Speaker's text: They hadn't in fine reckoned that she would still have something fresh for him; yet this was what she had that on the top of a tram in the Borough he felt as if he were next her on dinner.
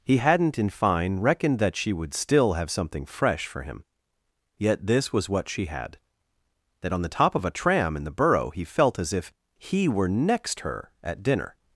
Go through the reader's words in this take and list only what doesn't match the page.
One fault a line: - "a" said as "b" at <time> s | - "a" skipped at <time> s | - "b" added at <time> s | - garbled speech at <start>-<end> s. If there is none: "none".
- "They" said as "He" at 0.0 s
- "on" said as "at" at 11.0 s